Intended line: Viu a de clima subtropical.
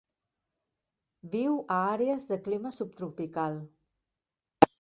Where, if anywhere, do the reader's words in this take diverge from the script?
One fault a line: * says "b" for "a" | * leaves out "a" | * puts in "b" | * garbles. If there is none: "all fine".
* puts in "àrees"